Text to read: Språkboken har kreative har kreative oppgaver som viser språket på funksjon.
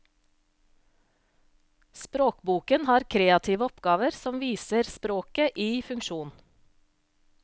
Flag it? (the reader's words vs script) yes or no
yes